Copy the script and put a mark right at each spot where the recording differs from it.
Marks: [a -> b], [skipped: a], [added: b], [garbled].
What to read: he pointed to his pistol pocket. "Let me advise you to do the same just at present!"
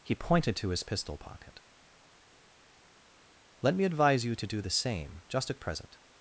he pointed to his pistol pocket. "Let me advise you to do the same just at present!"